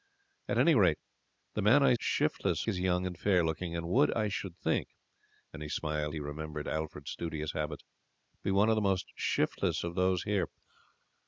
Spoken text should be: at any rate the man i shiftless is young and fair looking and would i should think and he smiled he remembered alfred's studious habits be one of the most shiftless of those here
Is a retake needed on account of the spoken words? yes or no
no